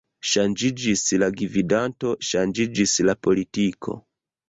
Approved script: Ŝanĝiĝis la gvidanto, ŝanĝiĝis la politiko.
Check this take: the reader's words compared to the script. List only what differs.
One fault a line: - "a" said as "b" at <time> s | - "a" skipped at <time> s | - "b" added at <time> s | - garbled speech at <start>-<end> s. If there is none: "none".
none